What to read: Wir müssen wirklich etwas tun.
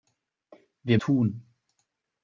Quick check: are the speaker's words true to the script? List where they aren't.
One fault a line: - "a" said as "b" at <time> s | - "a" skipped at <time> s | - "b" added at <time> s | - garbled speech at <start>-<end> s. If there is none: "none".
- "müssen wirklich etwas" skipped at 1.0 s